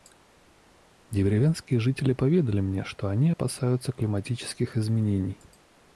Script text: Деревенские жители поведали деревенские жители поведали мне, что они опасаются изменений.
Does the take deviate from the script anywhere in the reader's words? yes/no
yes